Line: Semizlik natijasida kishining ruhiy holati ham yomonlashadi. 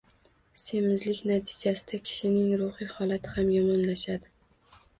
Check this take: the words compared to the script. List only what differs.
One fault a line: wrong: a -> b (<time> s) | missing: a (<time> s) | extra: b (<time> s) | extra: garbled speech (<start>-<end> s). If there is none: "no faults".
no faults